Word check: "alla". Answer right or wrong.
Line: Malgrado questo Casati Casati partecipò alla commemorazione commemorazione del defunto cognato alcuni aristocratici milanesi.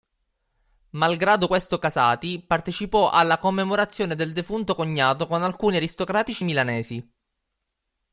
right